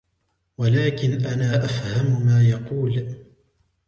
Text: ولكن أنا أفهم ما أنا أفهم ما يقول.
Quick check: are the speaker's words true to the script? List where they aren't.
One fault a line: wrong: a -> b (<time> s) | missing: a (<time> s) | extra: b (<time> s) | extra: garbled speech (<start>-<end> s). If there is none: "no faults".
missing: أنا أفهم ما (2.4 s)